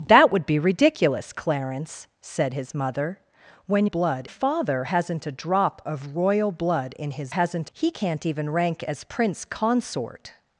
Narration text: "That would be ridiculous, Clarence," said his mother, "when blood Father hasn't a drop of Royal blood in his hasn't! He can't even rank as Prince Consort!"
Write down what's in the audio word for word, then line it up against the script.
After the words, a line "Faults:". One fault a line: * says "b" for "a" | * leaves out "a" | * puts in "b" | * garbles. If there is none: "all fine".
"That would be ridiculous, Clarence," said his mother, "when blood Father hasn't a drop of Royal blood in his hasn't! He can't even rank as Prince Consort!"
Faults:
all fine